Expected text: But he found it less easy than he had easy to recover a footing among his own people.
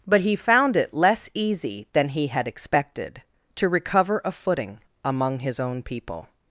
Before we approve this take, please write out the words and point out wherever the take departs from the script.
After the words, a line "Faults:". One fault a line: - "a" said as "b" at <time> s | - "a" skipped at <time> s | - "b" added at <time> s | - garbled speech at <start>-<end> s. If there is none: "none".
But he found it less easy than he had expected to recover a footing among his own people.
Faults:
- "easy" said as "expected" at 2.5 s